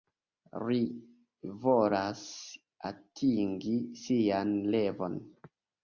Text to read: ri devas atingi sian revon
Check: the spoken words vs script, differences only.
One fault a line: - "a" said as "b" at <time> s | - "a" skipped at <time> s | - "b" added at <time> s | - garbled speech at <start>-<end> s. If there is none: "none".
- "devas" said as "volas" at 1.7 s